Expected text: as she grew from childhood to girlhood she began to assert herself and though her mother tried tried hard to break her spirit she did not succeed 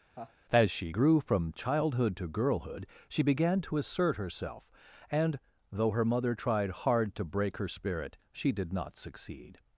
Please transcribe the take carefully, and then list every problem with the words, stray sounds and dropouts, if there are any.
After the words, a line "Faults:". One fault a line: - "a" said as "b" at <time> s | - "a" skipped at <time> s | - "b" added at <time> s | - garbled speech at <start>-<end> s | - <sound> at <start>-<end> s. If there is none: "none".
as she grew from childhood to girlhood she began to assert herself and though her mother tried hard to break her spirit she did not succeed
Faults:
- laugh at 0.1-0.3 s
- "tried" skipped at 6.7 s